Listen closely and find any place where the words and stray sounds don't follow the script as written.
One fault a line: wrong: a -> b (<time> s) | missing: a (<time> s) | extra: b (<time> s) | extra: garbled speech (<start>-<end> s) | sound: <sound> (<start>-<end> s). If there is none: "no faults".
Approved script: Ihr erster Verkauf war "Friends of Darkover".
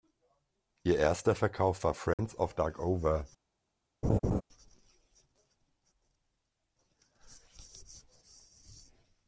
sound: dropout (2.1-2.2 s)
sound: laugh (4.0-4.4 s)